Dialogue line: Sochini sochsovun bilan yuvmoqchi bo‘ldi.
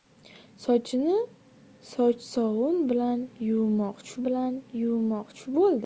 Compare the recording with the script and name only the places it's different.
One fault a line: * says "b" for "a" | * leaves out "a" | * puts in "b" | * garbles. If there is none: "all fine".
* puts in "bilan yuvmoqchi"